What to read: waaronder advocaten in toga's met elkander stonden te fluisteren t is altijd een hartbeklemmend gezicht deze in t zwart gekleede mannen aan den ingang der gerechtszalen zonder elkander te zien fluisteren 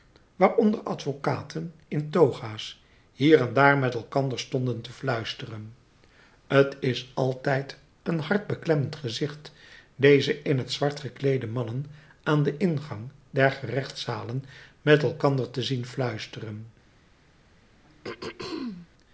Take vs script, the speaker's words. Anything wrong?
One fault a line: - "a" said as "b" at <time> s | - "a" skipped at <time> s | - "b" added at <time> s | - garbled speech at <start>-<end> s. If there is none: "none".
- "hier en daar" added at 3.1 s
- "zonder" said as "met" at 14.8 s